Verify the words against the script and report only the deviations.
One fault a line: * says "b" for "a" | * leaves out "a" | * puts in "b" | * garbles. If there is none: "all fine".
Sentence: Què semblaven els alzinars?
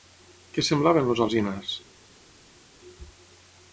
all fine